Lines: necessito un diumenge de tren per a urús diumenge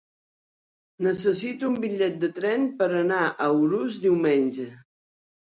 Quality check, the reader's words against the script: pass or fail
fail